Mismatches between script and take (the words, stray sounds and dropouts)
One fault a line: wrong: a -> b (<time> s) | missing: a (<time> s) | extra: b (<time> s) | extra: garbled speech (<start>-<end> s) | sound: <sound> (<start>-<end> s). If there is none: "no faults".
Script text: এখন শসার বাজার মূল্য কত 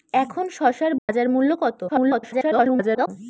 sound: dropout (1.0-1.1 s)
extra: garbled speech (1.9-3.1 s)